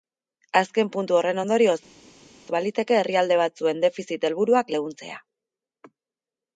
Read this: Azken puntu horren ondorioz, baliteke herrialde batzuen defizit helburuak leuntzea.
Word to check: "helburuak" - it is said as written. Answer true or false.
true